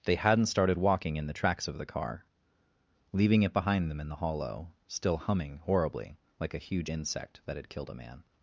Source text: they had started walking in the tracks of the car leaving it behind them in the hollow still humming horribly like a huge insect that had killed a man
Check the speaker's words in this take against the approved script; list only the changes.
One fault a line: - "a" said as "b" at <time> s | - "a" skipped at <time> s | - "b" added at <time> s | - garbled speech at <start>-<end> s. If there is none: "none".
- "had" said as "hadn't" at 0.1 s